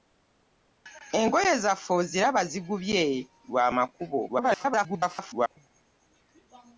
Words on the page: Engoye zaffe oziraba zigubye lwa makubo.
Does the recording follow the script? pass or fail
fail